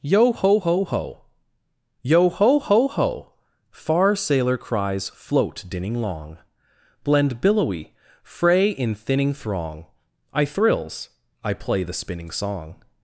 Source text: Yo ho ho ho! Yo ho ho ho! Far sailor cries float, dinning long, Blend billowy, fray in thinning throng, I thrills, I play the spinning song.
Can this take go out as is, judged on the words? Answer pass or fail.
pass